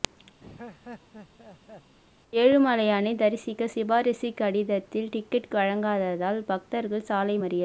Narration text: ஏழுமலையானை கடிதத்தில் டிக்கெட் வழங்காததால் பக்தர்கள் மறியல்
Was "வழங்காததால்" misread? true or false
false